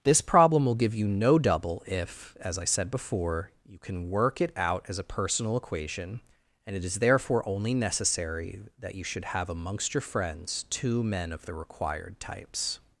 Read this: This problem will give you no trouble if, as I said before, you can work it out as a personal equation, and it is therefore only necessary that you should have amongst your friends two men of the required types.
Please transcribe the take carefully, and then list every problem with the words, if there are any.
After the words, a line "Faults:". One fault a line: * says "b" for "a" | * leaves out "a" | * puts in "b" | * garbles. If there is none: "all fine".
This problem will give you no double if, as I said before, you can work it out as a personal equation, and it is therefore only necessary that you should have amongst your friends two men of the required types.
Faults:
* says "double" for "trouble"